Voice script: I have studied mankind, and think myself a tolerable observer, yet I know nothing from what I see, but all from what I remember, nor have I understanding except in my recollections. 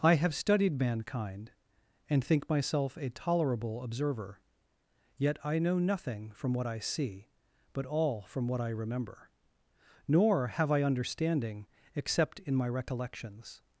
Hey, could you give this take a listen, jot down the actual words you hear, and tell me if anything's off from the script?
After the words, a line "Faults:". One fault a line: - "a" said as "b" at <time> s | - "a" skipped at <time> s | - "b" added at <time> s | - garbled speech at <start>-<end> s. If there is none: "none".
I have studied mankind, and think myself a tolerable observer, yet I know nothing from what I see, but all from what I remember, nor have I understanding except in my recollections.
Faults:
none